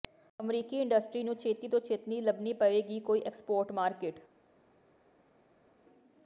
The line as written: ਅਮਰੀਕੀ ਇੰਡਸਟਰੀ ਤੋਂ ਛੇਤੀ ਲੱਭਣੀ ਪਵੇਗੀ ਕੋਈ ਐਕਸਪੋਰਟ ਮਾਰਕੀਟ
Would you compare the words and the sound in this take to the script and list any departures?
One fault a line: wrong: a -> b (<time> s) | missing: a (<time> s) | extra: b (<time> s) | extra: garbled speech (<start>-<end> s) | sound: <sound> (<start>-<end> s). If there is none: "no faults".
extra: ਨੂੰ ਛੇਤੀ (1.2 s)